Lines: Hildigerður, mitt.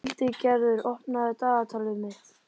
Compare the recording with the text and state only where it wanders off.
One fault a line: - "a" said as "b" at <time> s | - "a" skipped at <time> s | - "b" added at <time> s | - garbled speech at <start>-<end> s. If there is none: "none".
- "opnaðu dagatalið" added at 0.9 s